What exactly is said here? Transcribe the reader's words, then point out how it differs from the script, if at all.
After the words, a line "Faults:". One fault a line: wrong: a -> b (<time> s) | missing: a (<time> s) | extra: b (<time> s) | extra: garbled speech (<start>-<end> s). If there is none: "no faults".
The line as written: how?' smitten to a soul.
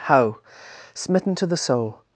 how?' smitten to the soul.
Faults:
wrong: a -> the (1.4 s)